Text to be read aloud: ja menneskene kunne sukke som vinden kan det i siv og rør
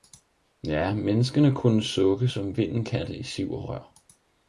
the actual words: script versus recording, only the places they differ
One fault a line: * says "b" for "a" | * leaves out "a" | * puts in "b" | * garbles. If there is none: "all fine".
all fine